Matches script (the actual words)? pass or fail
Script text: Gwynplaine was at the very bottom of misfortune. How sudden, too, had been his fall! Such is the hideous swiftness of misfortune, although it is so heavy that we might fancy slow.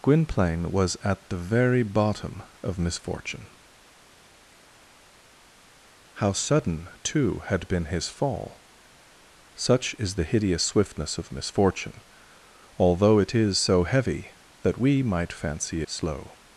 pass